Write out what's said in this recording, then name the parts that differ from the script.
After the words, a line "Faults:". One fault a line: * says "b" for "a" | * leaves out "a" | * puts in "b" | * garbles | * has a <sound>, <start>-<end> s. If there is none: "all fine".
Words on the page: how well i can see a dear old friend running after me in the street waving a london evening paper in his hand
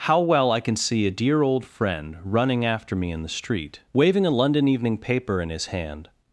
how well i can see a dear old friend running after me in the street waving a london evening paper in his hand
Faults:
all fine